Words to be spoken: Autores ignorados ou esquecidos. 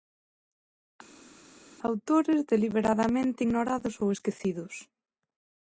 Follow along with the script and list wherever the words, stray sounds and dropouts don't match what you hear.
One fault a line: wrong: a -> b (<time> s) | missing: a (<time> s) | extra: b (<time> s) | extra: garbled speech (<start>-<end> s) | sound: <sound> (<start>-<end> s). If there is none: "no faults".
extra: deliberadamente (2.5 s)